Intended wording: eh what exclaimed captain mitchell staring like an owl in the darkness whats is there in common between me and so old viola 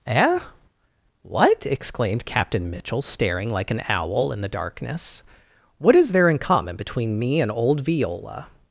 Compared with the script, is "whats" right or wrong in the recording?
wrong